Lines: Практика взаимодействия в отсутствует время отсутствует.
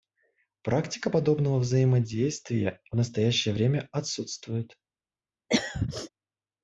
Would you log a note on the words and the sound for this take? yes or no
yes